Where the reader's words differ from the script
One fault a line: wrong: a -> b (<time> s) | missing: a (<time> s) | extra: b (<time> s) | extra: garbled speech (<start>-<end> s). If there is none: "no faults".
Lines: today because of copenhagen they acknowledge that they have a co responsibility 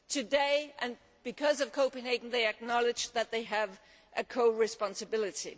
no faults